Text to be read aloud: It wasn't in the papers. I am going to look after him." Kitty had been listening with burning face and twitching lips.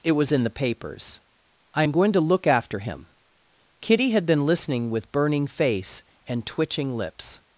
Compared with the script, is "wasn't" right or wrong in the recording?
wrong